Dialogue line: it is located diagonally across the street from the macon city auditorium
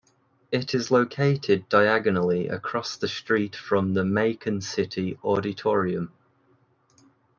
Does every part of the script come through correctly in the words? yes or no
yes